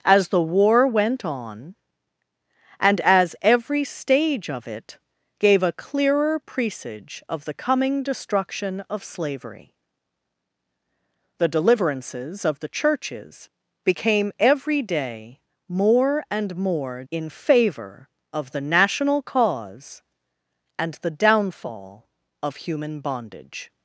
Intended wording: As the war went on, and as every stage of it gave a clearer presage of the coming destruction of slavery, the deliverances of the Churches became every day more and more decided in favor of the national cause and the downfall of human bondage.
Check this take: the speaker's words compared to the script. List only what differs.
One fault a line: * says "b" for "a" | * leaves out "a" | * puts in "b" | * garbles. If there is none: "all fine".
* leaves out "decided"